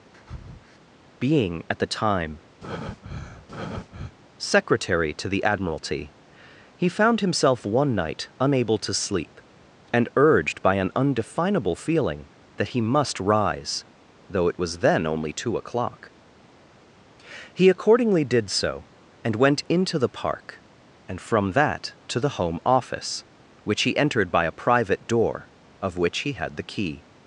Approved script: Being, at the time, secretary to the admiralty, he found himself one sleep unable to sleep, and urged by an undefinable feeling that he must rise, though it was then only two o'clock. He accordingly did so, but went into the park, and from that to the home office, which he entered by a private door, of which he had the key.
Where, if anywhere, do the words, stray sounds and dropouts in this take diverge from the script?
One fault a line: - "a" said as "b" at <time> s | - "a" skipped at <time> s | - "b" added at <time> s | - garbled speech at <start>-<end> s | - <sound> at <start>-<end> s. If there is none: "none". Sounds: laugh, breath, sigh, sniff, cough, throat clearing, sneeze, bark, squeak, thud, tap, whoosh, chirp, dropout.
- breath at 0.1-0.8 s
- breath at 2.6-4.1 s
- "sleep" said as "night" at 7.9 s
- "but" said as "and" at 19.2 s